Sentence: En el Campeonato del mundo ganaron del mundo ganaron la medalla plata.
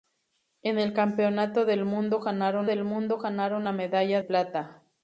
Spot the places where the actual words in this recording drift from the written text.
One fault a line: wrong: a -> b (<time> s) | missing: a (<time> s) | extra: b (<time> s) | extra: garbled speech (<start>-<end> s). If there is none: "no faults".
no faults